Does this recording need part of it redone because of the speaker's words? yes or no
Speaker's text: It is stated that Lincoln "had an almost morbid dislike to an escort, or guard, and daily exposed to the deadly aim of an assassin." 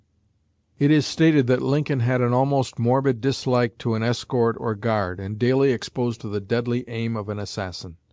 no